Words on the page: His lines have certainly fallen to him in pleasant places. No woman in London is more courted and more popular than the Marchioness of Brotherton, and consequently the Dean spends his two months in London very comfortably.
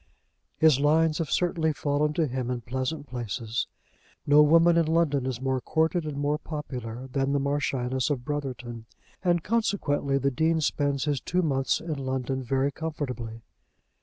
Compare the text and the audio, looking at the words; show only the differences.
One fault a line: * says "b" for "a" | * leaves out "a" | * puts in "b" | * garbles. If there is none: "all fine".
all fine